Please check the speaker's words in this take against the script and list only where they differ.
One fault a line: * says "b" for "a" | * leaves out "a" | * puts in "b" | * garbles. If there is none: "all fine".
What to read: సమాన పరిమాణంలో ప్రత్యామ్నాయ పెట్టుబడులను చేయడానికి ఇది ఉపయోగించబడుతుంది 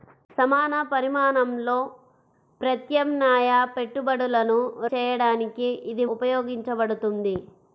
all fine